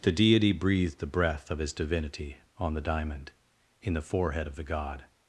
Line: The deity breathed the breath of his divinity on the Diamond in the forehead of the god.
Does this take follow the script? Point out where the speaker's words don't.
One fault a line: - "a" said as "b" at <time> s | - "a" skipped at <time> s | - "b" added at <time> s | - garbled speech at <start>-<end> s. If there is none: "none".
none